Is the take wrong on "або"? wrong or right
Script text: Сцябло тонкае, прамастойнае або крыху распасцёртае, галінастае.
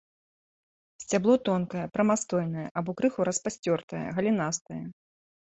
right